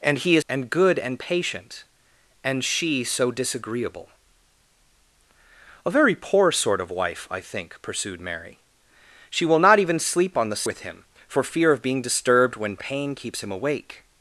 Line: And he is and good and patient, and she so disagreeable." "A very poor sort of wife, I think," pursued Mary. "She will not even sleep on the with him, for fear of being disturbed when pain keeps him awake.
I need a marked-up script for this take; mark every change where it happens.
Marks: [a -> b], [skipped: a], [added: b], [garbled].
And he is and good and patient, and she so disagreeable." "A very poor sort of wife, I think," pursued Mary. "She will not even sleep on the with him, for fear of being disturbed when pain keeps him awake.